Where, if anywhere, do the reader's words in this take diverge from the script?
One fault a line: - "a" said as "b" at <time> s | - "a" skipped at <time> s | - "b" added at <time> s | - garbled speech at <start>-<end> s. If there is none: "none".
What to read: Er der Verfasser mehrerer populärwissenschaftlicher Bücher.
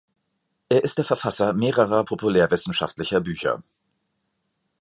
- "ist" added at 0.8 s